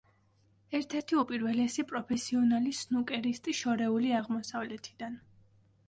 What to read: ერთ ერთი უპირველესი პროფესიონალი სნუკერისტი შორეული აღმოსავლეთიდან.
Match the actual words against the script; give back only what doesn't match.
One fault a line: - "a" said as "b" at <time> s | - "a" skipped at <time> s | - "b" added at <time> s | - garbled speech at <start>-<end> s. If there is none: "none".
none